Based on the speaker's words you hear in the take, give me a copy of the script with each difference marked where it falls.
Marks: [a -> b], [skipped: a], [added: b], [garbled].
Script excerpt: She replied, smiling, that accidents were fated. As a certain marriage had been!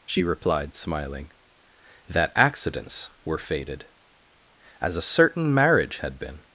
She replied, smiling, that accidents were fated. As a certain marriage had been!